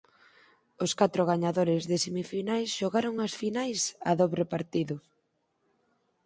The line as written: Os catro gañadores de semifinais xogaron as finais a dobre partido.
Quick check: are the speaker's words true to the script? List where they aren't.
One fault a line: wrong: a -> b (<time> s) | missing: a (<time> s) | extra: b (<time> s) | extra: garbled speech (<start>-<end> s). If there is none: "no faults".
no faults